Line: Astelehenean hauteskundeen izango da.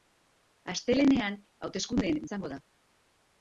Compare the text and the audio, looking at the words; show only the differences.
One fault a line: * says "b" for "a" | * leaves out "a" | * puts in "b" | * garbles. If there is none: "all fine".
all fine